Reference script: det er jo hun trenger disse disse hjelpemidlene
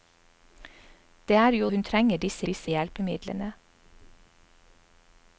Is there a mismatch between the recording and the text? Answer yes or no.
no